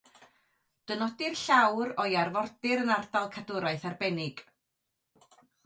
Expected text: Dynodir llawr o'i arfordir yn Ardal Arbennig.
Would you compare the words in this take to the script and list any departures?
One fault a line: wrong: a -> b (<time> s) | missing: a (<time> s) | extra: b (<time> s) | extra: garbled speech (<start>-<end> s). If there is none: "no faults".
extra: Cadwraeth (3.4 s)